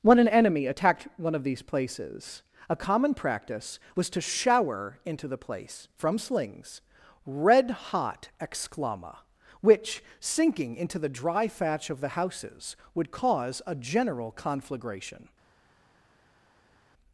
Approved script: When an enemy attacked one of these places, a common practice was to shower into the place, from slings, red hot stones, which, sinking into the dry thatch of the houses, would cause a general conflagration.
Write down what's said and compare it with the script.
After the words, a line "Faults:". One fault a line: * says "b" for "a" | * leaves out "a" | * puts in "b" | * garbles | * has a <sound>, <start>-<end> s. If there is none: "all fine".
When an enemy attacked one of these places, a common practice was to shower into the place, from slings, red hot exclama, which, sinking into the dry thatch of the houses, would cause a general conflagration.
Faults:
* says "exclama" for "stones"